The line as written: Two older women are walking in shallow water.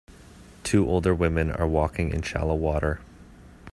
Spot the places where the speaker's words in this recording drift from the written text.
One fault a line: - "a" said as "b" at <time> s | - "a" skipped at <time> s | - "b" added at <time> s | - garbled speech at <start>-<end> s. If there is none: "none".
none